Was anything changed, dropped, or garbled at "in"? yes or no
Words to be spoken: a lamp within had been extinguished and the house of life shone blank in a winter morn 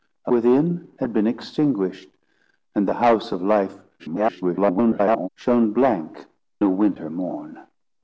yes